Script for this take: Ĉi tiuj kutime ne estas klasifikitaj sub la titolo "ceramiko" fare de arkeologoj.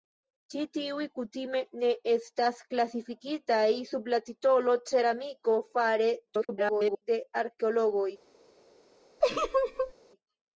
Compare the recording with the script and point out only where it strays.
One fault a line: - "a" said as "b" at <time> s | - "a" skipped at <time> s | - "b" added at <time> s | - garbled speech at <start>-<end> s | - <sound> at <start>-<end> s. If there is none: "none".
- garbled speech at 6.3-7.0 s
- laugh at 9.2-9.9 s